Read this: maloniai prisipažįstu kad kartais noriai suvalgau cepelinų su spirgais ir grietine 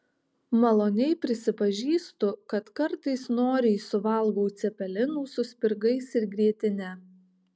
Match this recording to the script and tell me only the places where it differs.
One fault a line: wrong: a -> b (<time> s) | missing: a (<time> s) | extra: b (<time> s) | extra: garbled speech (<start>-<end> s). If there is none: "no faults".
no faults